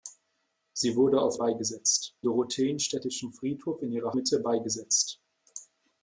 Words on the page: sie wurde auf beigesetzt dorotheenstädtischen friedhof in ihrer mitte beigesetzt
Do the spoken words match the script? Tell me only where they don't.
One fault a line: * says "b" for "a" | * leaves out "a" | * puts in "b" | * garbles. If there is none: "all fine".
all fine